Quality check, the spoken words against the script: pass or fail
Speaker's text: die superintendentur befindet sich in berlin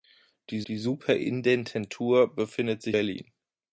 fail